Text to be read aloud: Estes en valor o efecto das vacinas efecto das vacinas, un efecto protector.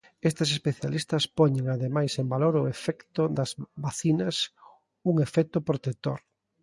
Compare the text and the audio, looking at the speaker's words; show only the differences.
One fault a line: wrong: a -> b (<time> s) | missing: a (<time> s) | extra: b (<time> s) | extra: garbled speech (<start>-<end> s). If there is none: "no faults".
extra: especialistas poñen ademais (0.6 s)
missing: efecto das vacinas (4.4 s)